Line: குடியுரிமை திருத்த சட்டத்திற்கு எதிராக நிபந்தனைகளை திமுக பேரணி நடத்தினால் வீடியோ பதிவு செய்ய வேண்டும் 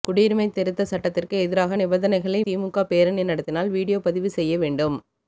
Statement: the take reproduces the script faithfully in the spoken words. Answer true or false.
true